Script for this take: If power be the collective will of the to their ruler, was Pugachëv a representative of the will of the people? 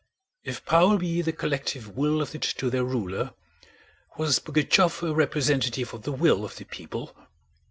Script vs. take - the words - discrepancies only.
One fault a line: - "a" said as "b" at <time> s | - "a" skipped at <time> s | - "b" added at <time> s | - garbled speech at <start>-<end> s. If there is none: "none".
none